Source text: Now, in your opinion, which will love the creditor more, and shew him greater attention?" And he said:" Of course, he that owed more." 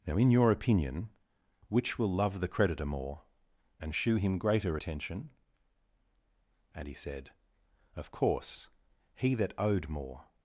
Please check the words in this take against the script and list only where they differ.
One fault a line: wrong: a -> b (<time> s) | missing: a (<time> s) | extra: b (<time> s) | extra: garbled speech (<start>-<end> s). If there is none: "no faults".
no faults